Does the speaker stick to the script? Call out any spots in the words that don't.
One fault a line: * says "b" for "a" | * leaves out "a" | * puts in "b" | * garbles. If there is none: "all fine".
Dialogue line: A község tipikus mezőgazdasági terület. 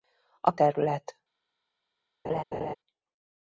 * leaves out "község tipikus mezőgazdasági"